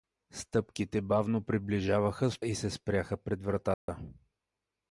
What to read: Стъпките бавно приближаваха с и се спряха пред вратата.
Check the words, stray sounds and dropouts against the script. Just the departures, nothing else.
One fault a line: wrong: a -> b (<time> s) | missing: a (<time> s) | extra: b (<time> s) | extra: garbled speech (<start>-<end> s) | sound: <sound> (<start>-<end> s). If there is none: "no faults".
sound: dropout (3.7-3.9 s)